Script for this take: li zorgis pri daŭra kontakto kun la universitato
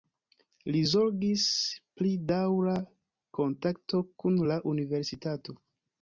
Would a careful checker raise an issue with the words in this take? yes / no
no